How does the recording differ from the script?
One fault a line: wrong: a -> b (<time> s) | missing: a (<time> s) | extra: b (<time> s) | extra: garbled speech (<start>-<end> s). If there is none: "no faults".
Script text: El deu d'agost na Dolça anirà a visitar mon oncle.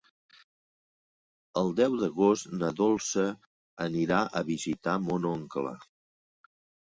no faults